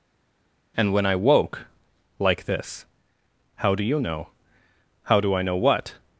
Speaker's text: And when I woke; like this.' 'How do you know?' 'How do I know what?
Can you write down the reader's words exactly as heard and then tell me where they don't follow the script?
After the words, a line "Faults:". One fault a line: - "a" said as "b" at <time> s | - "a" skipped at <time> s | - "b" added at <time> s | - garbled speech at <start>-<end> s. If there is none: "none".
And when I woke; like this.' 'How do you know?' 'How do I know what?
Faults:
none